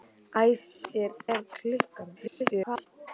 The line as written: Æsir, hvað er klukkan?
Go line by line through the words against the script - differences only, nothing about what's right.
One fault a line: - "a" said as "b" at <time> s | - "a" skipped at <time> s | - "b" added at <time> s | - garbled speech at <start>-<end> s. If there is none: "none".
- "hvað" skipped at 1.1 s
- garbled speech at 2.1-2.9 s